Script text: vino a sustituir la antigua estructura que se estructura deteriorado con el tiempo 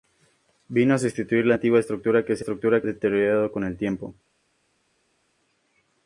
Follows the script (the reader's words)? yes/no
yes